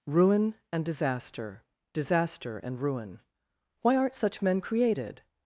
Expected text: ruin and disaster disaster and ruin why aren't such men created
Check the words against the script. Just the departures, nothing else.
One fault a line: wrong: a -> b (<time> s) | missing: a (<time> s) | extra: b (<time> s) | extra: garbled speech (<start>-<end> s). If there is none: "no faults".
no faults